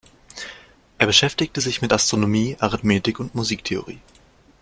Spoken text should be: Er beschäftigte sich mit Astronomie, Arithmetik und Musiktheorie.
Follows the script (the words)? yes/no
yes